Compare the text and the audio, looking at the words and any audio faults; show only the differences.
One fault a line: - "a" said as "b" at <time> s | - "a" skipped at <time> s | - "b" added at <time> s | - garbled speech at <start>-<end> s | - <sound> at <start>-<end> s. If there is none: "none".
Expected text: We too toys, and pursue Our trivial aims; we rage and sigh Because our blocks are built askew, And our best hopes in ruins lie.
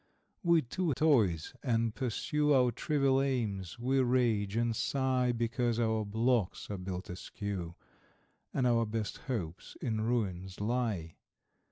none